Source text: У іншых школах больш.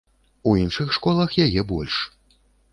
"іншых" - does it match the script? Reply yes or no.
yes